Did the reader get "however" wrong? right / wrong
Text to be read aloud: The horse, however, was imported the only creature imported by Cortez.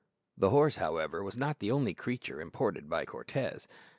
right